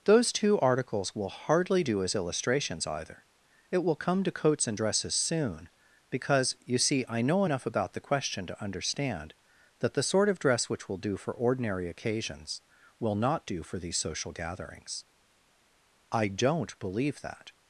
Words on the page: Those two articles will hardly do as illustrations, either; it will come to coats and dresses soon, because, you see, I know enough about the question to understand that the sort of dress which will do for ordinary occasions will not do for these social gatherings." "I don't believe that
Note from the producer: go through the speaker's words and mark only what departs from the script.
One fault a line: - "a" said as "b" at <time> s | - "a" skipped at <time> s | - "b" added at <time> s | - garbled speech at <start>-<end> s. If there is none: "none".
none